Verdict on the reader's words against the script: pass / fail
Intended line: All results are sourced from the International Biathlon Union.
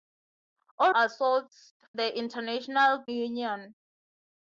fail